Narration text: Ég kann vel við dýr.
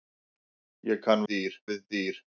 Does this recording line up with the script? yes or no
no